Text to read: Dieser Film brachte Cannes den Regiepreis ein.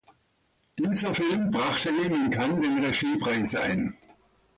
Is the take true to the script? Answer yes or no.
no